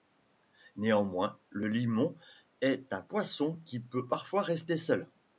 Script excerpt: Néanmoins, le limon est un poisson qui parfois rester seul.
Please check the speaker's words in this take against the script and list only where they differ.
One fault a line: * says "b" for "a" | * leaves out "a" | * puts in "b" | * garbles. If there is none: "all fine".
* puts in "peut"